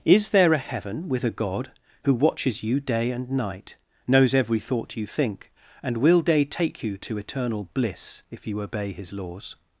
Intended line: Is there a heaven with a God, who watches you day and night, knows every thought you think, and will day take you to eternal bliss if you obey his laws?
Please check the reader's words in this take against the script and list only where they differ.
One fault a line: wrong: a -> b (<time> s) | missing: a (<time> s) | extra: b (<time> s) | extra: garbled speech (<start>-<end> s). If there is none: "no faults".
no faults